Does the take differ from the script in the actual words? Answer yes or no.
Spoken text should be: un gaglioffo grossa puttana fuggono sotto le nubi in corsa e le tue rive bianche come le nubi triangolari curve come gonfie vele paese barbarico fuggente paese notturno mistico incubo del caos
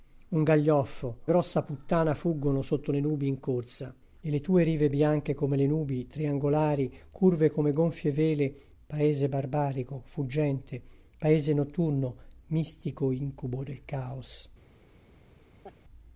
no